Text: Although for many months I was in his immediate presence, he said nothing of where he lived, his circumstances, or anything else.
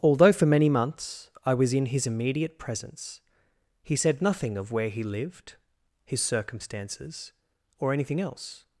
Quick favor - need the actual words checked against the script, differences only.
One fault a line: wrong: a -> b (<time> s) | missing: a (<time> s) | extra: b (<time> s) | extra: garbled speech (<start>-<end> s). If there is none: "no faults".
no faults